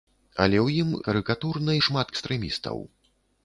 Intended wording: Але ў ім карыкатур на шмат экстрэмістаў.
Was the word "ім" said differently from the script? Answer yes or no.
no